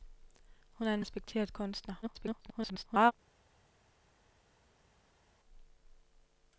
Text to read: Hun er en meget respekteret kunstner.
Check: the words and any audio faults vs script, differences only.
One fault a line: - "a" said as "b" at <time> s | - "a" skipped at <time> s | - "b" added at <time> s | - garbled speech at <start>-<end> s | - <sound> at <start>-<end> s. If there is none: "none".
- "meget" skipped at 1.0 s
- garbled speech at 2.0-3.1 s